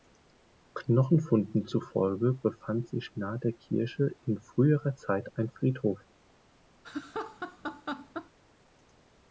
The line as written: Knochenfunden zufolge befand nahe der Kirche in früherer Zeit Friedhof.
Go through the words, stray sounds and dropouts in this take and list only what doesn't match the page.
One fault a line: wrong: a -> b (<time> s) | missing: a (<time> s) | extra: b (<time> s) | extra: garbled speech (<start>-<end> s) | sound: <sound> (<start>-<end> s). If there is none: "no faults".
extra: sich (2.9 s)
extra: ein (5.3 s)
sound: laugh (6.8-8.3 s)